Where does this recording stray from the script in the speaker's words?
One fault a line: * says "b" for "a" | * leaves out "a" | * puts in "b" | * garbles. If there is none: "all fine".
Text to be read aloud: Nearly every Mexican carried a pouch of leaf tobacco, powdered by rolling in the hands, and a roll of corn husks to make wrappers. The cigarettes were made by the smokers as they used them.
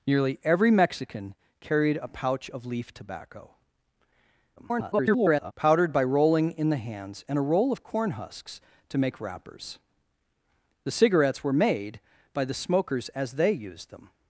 * garbles